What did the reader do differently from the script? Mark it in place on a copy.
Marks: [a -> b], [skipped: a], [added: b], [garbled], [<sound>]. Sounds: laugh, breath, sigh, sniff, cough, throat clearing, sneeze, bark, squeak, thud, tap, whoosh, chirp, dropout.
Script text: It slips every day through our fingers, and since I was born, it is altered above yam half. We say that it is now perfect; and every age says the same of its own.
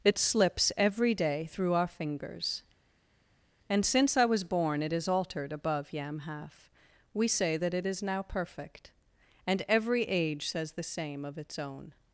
It slips every day through our fingers, and since I was born, it is altered above yam half. We say that it is now perfect; and every age says the same of its own.